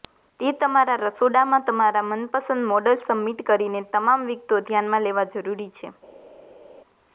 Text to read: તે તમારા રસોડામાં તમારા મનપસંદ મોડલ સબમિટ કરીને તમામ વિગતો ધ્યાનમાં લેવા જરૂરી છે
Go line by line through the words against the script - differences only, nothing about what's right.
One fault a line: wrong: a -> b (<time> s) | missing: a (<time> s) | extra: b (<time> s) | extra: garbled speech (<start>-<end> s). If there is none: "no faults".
no faults